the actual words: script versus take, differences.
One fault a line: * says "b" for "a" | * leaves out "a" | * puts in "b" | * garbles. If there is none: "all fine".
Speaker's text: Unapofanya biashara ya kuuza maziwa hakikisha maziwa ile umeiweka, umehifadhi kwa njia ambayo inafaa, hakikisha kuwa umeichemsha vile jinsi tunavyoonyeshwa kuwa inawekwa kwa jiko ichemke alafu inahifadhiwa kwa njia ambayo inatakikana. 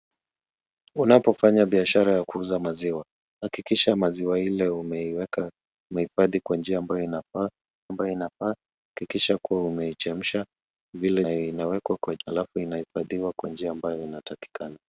* puts in "ambayo inafaa"
* leaves out "jinsi tunavyoonyeshwa kuwa"
* leaves out "jiko ichemke"